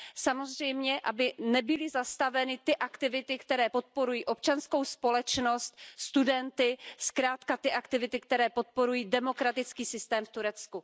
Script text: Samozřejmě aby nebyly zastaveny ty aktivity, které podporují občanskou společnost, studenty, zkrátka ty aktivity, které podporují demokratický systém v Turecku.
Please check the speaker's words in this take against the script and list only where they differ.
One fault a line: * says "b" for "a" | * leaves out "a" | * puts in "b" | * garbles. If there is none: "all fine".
all fine